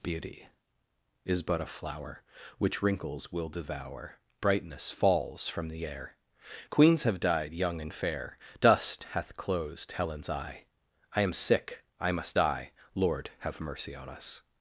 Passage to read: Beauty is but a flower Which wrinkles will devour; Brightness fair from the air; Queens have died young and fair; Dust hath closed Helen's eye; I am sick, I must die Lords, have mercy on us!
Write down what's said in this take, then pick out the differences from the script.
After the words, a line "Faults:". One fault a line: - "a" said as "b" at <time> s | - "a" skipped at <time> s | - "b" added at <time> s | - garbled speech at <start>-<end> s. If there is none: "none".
Beauty is but a flower Which wrinkles will devour; Brightness falls from the air; Queens have died young and fair; Dust hath closed Helen's eye; I am sick, I must die Lord, have mercy on us!
Faults:
- "fair" said as "falls" at 4.9 s
- "Lords" said as "Lord" at 12.9 s